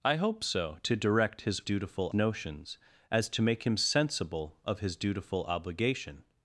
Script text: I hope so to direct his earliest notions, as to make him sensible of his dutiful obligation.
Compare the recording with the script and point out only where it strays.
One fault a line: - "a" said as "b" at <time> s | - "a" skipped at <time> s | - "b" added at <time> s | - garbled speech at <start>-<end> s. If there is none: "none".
- "earliest" said as "dutiful" at 1.6 s